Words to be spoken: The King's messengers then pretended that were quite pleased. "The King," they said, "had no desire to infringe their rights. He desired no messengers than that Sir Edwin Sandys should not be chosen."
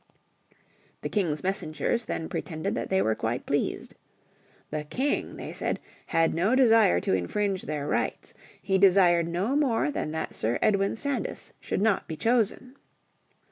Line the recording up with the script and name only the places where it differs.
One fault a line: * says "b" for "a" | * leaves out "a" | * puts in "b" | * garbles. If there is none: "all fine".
* puts in "they"
* says "more" for "messengers"